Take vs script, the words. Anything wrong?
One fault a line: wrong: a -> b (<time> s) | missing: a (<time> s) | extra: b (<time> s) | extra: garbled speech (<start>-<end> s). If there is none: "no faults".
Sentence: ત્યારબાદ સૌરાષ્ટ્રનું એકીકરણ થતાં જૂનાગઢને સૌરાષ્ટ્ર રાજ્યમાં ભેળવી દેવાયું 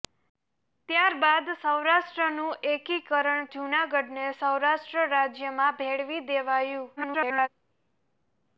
missing: થતાં (3.5 s)
extra: garbled speech (7.0-7.5 s)